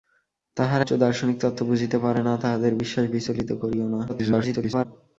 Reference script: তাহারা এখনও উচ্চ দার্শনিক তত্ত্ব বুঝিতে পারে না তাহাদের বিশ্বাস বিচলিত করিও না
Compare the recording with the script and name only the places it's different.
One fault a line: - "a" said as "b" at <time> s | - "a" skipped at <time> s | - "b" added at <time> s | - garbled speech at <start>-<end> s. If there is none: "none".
- "এখনও" skipped at 0.8 s
- garbled speech at 4.1-4.9 s